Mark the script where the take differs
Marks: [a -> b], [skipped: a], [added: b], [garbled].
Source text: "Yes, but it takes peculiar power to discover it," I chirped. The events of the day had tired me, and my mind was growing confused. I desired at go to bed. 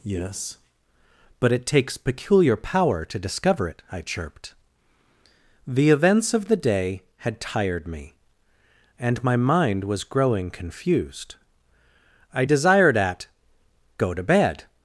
"Yes, but it takes peculiar power to discover it," I chirped. The events of the day had tired me, and my mind was growing confused. I desired at go to bed.